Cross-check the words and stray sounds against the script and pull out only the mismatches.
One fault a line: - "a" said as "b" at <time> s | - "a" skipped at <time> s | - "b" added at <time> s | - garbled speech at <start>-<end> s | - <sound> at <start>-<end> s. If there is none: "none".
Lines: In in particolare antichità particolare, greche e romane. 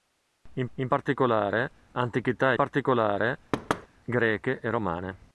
- thud at 3.5-3.9 s